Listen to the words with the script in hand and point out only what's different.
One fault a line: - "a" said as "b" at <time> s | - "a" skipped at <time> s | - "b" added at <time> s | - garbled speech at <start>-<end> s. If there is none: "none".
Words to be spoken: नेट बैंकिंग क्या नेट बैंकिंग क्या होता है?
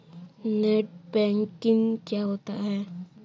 - "नेट बैंकिंग क्या" skipped at 2.2 s